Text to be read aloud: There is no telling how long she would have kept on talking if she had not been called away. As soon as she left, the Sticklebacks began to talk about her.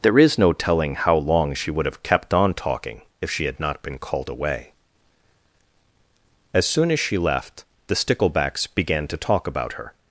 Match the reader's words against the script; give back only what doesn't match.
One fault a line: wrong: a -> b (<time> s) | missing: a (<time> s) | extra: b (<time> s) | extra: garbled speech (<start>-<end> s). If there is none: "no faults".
no faults